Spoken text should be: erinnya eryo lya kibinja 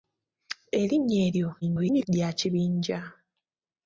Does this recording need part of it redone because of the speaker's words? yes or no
yes